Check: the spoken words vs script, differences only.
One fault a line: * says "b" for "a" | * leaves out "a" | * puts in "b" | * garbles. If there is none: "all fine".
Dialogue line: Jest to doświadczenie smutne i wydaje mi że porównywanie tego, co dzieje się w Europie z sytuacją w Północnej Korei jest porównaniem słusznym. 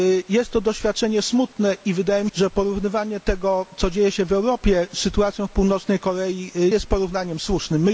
all fine